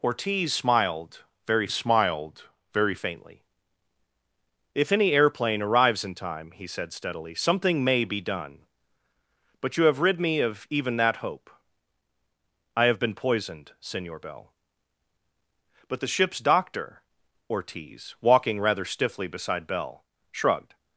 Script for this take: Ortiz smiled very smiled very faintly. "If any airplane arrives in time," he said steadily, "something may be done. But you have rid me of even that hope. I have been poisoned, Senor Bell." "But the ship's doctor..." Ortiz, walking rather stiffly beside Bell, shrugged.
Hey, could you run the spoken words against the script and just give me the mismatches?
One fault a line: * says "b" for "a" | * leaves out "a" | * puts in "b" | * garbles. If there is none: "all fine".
all fine